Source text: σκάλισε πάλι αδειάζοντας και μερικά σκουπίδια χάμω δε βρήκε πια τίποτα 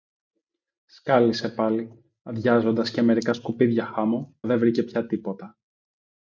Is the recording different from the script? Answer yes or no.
no